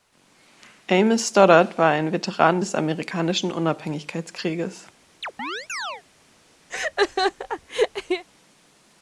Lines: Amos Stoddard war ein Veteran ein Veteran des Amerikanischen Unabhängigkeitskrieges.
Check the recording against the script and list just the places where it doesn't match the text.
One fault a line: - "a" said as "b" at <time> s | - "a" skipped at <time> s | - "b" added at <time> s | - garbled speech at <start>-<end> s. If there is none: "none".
- "ein Veteran" skipped at 2.6 s